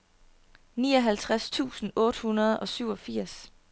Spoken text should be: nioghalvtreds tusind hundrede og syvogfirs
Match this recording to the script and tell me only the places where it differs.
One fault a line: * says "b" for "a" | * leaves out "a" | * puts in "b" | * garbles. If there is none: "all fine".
* puts in "otte"